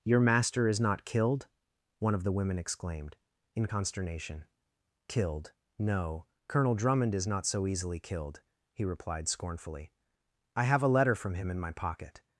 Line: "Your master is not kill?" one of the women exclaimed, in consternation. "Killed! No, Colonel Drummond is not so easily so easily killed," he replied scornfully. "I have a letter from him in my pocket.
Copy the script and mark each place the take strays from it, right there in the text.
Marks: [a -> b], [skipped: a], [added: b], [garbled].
"Your master is not [kill?" -> killed] one of the women exclaimed, in consternation. "Killed! No, Colonel Drummond is not so easily [skipped: so easily] killed," he replied scornfully. "I have a letter from him in my pocket.